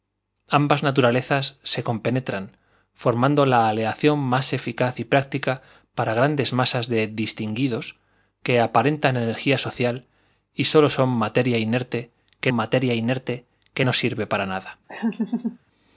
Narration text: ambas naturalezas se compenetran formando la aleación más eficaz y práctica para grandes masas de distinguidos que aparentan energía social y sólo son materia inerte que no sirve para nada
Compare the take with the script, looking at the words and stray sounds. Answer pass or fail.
fail